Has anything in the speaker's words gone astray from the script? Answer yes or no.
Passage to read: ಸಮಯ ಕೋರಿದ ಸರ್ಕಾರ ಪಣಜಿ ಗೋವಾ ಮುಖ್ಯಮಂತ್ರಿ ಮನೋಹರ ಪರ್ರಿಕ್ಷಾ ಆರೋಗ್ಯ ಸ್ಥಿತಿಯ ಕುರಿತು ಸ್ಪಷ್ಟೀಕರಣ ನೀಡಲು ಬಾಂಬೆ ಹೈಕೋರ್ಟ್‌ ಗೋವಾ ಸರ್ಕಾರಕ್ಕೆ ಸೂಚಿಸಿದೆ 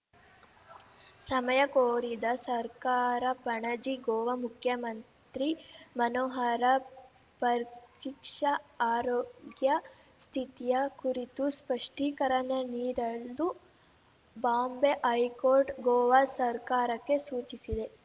no